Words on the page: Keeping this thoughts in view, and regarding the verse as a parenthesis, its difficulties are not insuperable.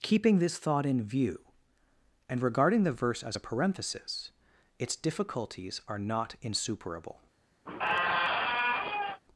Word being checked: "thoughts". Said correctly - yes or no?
no